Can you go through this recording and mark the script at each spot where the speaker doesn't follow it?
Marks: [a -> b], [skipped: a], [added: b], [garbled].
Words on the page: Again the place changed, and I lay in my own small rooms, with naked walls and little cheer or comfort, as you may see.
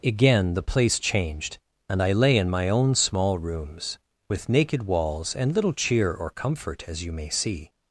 Again the place changed, and I lay in my own small rooms, with naked walls and little cheer or comfort, as you may see.